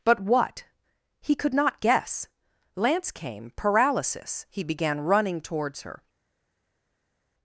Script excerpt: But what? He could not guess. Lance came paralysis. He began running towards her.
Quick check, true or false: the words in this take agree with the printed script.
true